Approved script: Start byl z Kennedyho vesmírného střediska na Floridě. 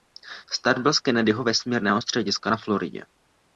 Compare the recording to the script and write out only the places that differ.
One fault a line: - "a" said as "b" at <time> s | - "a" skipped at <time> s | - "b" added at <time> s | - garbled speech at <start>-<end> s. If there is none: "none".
none